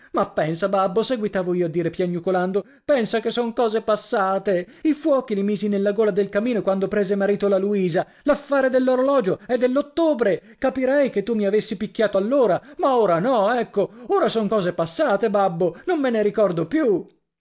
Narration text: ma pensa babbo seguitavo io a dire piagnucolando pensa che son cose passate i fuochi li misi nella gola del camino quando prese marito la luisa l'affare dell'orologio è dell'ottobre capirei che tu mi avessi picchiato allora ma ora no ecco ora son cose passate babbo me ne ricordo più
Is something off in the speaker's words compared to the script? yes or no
yes